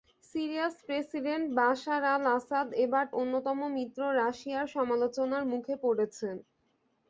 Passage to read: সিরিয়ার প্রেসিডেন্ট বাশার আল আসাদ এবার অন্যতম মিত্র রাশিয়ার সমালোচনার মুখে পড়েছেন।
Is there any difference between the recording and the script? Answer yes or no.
no